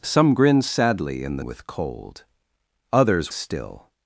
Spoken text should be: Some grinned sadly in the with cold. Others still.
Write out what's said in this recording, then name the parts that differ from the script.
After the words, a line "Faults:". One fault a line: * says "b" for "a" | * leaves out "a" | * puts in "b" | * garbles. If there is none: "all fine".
Some grinned sadly in the with cold. Others still.
Faults:
all fine